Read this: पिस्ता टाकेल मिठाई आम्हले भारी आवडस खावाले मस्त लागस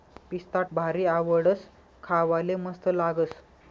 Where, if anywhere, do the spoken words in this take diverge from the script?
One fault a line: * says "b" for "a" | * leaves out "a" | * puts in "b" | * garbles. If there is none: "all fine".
* leaves out "टाकेल मिठाई आम्हले"